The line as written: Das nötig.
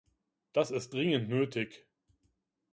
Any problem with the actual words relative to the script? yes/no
yes